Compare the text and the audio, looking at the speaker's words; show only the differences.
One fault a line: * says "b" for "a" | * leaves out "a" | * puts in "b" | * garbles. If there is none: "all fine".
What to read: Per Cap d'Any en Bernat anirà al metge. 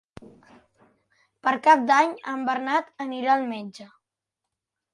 all fine